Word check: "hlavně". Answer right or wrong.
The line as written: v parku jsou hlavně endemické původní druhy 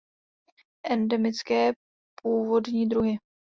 wrong